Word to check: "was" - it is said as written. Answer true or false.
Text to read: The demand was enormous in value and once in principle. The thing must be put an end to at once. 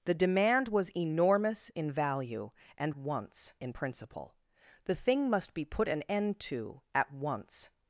true